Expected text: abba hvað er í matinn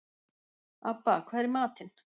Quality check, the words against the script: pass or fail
pass